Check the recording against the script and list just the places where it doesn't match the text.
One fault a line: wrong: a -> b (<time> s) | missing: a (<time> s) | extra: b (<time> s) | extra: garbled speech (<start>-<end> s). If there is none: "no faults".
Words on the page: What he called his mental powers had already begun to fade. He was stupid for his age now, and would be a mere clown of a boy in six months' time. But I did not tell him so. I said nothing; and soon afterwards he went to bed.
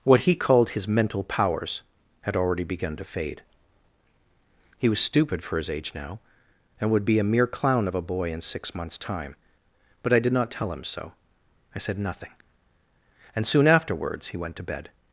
no faults